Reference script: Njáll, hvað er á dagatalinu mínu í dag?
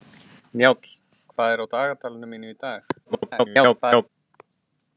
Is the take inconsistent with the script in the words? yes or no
yes